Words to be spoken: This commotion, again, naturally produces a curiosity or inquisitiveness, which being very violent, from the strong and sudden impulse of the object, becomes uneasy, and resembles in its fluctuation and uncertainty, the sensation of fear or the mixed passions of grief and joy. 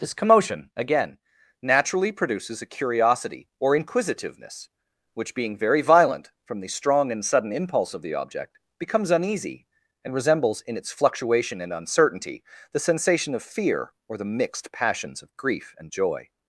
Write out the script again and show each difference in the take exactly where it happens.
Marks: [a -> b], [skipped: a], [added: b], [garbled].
This commotion, again, naturally produces a curiosity or inquisitiveness, which being very violent, from the strong and sudden impulse of the object, becomes uneasy, and resembles in its fluctuation and uncertainty, the sensation of fear or the mixed passions of grief and joy.